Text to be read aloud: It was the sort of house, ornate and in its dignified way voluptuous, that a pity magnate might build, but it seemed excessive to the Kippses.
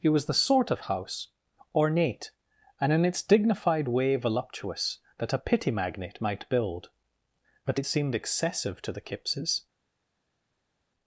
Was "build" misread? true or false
false